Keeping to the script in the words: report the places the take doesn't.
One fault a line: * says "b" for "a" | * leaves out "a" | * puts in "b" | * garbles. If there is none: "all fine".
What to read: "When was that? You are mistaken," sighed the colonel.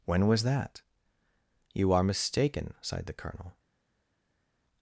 all fine